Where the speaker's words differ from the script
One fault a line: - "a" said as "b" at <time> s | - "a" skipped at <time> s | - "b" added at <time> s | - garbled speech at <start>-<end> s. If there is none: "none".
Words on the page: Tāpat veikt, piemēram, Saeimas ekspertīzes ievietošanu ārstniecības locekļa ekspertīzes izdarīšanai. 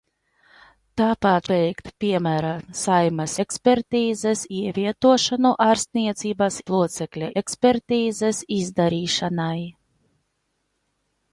none